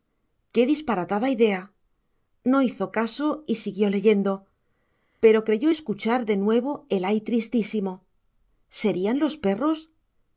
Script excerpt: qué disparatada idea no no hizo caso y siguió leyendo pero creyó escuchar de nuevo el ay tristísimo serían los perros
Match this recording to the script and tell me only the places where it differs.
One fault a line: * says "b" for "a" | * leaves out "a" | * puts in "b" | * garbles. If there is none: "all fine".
* leaves out "no"